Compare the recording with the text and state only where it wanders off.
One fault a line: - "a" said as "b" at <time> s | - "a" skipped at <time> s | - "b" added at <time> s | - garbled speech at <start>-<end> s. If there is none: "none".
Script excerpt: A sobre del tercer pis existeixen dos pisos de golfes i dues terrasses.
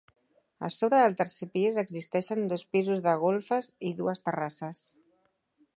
none